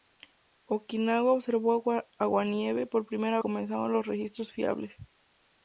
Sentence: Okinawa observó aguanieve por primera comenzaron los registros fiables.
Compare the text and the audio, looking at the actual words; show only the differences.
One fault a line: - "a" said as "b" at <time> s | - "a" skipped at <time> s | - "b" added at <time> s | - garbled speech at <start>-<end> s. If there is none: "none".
none